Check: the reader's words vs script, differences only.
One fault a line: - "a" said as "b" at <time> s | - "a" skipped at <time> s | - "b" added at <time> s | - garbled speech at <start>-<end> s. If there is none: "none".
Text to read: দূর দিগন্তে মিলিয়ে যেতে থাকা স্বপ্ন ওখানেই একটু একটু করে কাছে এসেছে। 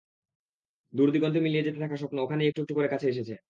none